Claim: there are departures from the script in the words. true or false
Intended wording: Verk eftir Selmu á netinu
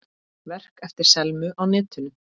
false